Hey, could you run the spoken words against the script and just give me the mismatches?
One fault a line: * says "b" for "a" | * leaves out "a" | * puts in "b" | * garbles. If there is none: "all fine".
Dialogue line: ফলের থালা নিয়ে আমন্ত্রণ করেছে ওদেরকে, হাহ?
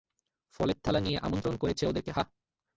all fine